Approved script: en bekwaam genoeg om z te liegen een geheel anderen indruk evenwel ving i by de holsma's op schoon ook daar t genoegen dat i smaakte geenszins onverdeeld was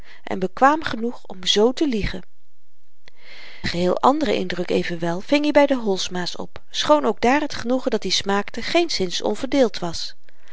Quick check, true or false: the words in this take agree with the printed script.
false